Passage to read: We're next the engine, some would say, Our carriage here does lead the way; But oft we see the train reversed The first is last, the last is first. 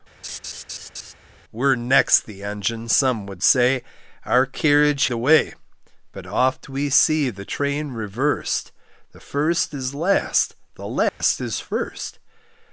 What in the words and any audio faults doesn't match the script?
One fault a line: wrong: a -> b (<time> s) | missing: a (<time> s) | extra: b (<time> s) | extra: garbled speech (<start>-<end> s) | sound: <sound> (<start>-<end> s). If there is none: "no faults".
sound: laugh (0.2-1.1 s)
missing: here does lead (5.1 s)
sound: dropout (11.1-11.2 s)